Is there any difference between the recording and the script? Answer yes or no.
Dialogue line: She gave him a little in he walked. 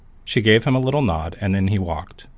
yes